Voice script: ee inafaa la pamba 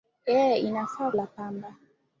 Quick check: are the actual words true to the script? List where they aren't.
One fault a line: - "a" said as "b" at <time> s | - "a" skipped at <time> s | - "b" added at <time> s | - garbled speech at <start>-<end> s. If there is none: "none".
none